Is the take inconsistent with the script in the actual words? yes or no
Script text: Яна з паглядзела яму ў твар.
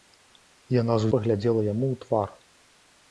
no